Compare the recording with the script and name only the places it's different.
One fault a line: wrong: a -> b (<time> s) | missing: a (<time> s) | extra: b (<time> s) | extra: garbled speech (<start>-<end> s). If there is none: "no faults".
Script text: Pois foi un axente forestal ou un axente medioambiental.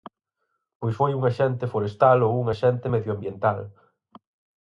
no faults